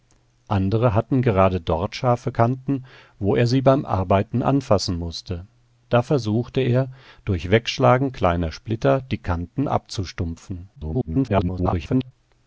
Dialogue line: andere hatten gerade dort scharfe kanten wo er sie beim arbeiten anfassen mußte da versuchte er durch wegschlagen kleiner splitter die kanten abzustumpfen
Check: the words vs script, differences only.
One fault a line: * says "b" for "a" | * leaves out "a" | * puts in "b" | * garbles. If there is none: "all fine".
* garbles